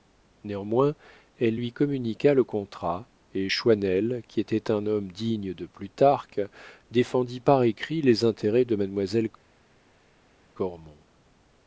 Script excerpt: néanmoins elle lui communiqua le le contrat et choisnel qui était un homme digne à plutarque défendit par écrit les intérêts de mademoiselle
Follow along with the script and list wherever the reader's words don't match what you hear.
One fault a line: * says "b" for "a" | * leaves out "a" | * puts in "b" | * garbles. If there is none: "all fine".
* leaves out "le"
* says "de" for "à"